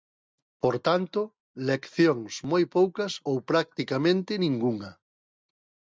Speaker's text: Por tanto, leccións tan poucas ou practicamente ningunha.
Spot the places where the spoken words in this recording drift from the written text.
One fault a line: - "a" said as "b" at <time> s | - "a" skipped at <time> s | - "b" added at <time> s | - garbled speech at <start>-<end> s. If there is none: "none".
- "tan" said as "moi" at 2.5 s